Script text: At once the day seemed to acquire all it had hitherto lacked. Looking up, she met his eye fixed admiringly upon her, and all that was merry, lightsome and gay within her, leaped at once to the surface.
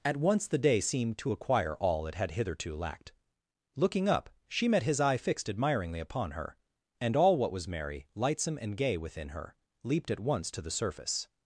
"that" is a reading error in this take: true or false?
true